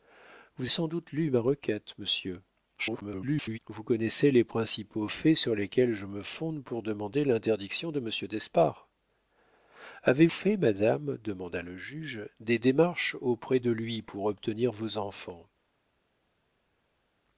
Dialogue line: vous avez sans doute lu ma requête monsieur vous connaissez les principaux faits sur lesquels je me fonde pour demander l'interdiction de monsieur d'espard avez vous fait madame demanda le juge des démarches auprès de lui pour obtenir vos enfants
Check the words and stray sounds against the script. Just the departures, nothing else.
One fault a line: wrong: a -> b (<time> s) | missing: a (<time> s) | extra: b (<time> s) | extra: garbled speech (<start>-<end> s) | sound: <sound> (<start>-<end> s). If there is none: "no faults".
missing: avez (0.7 s)
extra: garbled speech (2.8-3.6 s)
missing: vous (10.3 s)